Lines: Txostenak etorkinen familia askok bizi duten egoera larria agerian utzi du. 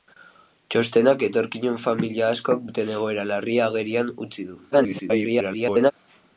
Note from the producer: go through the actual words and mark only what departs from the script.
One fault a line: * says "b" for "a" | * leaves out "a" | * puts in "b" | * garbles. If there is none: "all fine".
* leaves out "bizi"
* garbles